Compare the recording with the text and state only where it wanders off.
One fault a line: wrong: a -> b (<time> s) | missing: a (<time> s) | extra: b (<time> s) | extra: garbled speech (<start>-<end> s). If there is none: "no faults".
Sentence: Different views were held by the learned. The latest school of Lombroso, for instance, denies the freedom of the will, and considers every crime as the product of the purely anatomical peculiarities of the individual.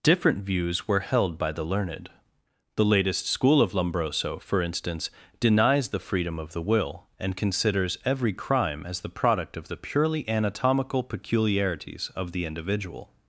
no faults